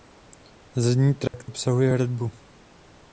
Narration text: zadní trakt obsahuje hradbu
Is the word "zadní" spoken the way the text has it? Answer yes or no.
yes